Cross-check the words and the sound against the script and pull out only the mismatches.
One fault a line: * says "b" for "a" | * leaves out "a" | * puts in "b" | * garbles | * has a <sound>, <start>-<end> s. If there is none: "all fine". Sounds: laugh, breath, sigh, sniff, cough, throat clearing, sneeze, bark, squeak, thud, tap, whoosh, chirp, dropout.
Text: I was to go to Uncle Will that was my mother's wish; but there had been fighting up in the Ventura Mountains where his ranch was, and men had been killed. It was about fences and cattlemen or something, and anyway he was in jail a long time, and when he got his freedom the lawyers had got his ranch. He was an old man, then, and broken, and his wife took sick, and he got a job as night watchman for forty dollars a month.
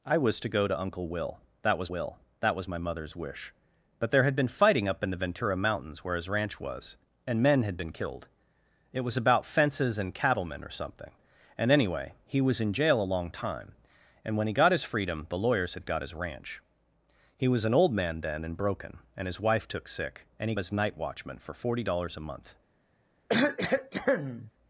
* puts in "Will that was"
* leaves out "got a job"
* has a cough, 23.3-24.5 s